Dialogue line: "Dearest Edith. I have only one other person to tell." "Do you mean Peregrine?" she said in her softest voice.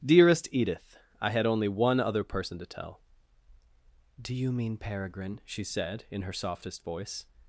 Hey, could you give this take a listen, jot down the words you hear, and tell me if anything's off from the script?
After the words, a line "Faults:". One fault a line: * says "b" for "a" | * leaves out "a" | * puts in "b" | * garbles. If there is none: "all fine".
"Dearest Edith. I had only one other person to tell." "Do you mean Peregrine?" she said in her softest voice.
Faults:
* says "had" for "have"